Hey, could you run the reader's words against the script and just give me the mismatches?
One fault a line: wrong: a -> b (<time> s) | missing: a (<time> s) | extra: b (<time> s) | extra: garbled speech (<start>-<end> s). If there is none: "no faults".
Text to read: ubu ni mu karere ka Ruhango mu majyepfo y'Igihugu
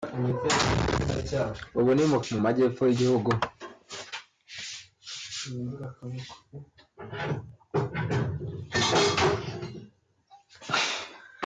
missing: karere ka Ruhango (2.2 s)